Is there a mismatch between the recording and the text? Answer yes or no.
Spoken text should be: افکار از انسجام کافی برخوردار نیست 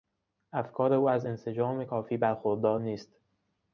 yes